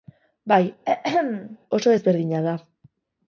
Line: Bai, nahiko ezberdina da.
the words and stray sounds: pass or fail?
fail